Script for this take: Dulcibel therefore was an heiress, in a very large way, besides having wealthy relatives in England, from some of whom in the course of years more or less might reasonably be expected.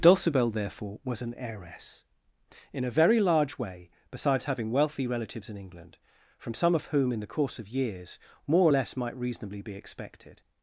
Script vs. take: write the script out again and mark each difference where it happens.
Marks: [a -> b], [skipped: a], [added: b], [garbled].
Dulcibel therefore was an heiress, in a very large way, besides having wealthy relatives in England, from some of whom in the course of years more or less might reasonably be expected.